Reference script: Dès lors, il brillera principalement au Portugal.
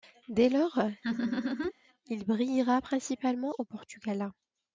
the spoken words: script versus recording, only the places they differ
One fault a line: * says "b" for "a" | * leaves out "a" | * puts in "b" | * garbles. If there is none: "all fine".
all fine